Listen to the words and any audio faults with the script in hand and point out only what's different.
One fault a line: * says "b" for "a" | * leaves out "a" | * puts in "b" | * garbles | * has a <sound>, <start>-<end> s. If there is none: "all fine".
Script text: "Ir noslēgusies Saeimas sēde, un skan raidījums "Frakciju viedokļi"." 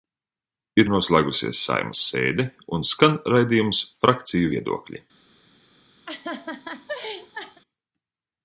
* has a laugh, 6.1-7.6 s